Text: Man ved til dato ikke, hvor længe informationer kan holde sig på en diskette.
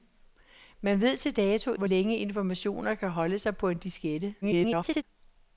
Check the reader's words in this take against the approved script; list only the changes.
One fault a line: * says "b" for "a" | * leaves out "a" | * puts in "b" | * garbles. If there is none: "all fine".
* leaves out "ikke"
* garbles